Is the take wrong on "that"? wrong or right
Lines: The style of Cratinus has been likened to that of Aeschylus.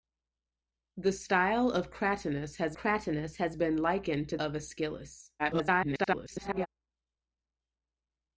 wrong